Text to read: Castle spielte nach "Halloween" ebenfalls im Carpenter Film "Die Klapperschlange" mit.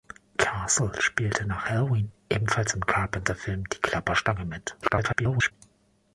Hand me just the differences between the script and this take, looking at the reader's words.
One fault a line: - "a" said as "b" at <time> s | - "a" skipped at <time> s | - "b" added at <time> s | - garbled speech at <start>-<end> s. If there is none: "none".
- garbled speech at 4.8-5.5 s